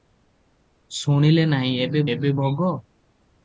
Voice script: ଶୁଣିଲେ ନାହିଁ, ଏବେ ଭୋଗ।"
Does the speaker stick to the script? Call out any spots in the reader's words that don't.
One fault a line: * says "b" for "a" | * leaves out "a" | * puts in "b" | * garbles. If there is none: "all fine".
* puts in "ଏବେ"